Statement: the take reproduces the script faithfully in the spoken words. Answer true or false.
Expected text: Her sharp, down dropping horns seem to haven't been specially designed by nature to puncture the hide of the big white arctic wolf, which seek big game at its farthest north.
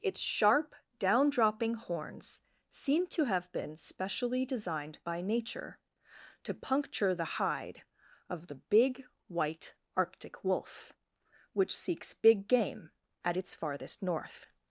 false